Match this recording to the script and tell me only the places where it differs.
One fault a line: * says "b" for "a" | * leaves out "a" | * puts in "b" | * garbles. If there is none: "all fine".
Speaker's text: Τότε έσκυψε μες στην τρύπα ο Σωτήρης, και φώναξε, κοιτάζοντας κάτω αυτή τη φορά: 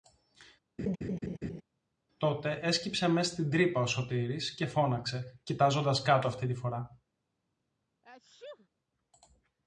all fine